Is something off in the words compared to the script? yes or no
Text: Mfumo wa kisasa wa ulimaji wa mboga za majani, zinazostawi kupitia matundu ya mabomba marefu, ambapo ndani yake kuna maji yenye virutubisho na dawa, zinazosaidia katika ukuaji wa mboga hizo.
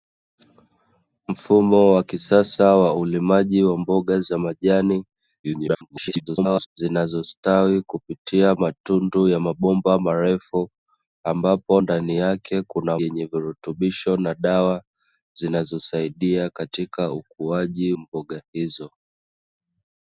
yes